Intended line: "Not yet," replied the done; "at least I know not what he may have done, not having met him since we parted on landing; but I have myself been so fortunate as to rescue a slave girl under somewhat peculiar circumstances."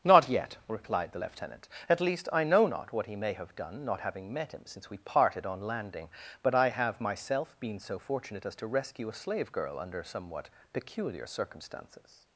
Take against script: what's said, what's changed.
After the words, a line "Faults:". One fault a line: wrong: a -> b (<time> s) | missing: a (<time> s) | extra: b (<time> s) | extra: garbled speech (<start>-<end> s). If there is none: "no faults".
"Not yet," replied the lieutenant; "at least I know not what he may have done, not having met him since we parted on landing; but I have myself been so fortunate as to rescue a slave girl under somewhat peculiar circumstances."
Faults:
wrong: done -> lieutenant (1.2 s)